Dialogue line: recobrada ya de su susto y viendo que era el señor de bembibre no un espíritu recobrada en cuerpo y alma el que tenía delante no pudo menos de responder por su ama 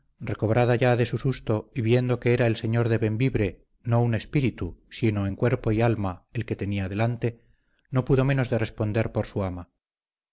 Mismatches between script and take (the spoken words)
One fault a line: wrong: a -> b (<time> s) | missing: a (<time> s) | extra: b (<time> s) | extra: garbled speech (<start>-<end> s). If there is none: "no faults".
wrong: recobrada -> sino (4.9 s)